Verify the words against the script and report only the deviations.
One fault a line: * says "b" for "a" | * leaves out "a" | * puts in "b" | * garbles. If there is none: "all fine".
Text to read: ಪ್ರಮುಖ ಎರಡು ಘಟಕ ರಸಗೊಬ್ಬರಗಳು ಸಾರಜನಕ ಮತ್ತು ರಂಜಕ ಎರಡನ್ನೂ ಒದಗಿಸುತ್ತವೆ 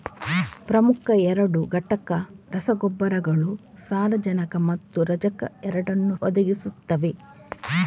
all fine